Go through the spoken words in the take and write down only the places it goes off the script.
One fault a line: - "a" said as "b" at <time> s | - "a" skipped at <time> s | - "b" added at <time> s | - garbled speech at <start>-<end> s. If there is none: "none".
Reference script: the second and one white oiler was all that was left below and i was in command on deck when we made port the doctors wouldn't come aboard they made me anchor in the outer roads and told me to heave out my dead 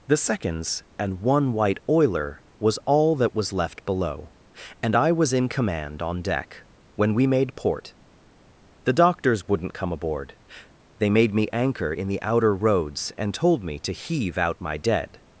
- "second" said as "seconds" at 0.2 s